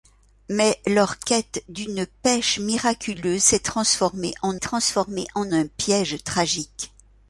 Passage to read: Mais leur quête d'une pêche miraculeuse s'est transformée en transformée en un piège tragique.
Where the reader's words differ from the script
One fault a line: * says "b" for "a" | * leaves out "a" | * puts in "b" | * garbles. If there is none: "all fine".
all fine